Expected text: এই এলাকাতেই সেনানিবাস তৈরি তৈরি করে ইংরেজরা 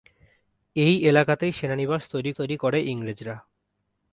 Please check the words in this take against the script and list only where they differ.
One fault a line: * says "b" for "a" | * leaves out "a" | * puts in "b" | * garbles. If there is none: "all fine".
all fine